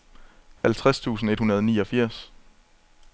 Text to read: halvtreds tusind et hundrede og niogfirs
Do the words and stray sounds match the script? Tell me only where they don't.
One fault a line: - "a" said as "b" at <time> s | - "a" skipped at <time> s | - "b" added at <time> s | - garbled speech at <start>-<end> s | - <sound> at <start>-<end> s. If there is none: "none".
- dropout at 0.6-0.6 s